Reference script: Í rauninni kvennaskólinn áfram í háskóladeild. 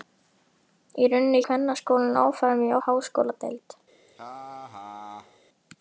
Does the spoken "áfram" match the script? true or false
true